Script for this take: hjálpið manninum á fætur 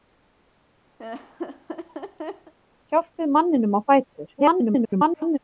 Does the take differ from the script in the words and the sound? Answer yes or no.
yes